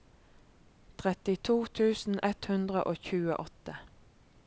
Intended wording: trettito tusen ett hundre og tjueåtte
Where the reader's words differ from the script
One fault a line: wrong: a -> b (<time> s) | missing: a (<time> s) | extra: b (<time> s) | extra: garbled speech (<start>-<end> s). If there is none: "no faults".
no faults